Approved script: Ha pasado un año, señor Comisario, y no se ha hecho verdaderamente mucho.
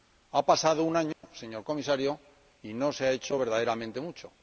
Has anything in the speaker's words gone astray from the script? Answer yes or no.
no